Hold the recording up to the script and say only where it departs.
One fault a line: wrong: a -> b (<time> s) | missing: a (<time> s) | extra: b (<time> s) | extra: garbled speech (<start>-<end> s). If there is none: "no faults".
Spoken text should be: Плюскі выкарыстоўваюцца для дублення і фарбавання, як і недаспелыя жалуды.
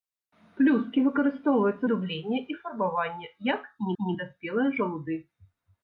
missing: для (1.9 s)
extra: і (4.0 s)